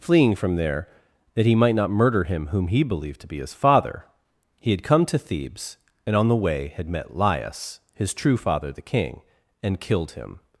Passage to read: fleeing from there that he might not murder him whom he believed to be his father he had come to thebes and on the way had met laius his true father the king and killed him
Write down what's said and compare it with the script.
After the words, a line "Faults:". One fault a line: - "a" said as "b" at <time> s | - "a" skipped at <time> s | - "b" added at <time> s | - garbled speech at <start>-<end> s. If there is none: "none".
fleeing from there that he might not murder him whom he believed to be his father he had come to thebes and on the way had met laius his true father the king and killed him
Faults:
none